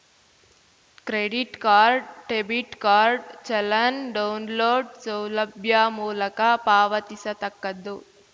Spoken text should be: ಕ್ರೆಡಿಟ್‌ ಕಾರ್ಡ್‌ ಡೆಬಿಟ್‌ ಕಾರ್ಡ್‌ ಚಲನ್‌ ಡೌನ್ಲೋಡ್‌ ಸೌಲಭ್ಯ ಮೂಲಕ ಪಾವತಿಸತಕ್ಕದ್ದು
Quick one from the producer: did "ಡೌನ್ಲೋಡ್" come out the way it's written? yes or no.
yes